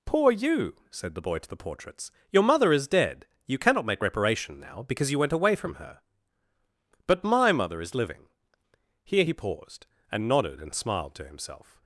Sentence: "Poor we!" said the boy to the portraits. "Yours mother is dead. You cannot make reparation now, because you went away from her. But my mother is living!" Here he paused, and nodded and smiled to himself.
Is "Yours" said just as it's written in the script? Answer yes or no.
no